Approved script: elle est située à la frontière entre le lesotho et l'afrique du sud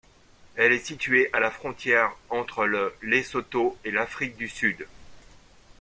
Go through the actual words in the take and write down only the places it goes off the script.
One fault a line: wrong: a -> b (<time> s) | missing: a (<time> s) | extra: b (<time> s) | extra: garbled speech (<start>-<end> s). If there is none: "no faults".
no faults